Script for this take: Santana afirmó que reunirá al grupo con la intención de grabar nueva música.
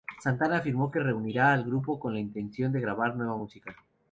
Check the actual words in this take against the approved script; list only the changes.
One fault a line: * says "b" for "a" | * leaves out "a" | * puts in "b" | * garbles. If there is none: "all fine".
all fine